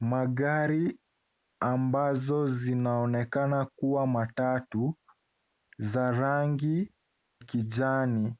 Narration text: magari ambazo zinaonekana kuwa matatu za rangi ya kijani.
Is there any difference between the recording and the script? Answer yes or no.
yes